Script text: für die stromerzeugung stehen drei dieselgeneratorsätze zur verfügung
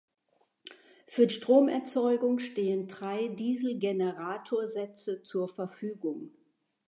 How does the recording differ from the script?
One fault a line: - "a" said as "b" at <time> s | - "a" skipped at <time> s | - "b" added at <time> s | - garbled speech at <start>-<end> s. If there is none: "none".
- "die" skipped at 1.3 s